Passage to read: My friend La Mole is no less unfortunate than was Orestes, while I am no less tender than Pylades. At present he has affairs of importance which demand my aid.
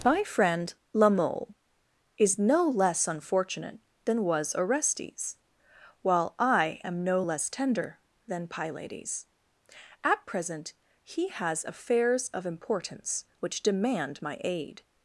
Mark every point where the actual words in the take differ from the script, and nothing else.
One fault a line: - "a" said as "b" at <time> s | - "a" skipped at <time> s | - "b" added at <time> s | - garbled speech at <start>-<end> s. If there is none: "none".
none